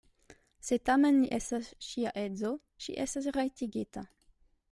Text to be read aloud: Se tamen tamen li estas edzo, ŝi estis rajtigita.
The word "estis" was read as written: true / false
false